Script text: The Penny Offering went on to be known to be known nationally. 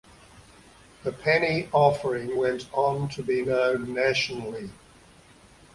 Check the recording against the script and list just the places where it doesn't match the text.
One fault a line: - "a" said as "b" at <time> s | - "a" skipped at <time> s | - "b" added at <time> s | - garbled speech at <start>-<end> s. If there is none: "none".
- "to be known" skipped at 3.9 s